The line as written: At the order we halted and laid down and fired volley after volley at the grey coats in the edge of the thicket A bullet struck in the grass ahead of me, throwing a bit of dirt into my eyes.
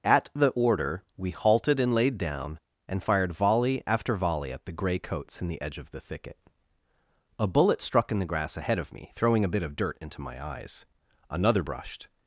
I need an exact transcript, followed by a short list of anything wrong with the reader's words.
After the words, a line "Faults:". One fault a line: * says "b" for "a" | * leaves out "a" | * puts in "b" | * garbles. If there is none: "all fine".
At the order we halted and laid down and fired volley after volley at the grey coats in the edge of the thicket A bullet struck in the grass ahead of me, throwing a bit of dirt into my eyes. Another brushed
Faults:
* puts in "Another brushed"